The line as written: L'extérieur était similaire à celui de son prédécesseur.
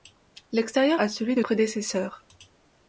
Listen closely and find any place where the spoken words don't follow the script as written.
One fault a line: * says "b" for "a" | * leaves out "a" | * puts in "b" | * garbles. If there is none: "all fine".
* leaves out "était similaire"
* leaves out "son"